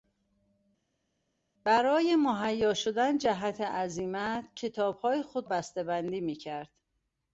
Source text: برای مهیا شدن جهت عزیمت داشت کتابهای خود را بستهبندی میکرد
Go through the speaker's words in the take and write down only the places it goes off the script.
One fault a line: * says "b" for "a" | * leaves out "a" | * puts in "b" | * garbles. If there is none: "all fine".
* leaves out "داشت"
* leaves out "را"